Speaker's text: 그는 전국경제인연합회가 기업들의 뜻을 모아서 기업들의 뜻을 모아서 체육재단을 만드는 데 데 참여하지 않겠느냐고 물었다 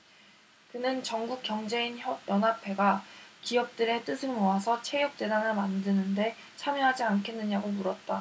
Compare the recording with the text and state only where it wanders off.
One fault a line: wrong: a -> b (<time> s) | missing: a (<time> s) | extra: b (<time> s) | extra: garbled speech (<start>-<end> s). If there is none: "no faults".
missing: 기업들의 뜻을 모아서 (4.8 s)
missing: 데 (6.3 s)